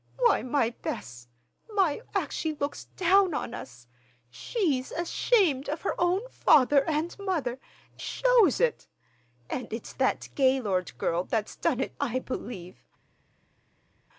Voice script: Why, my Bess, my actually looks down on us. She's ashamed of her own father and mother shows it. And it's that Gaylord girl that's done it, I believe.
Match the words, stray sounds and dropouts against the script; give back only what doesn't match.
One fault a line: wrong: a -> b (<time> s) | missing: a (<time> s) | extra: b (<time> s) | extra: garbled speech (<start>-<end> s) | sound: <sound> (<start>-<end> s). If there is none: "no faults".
no faults